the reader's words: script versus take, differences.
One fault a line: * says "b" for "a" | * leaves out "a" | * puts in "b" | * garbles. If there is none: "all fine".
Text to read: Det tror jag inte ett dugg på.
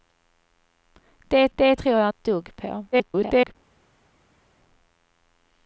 * puts in "det"
* leaves out "inte"
* garbles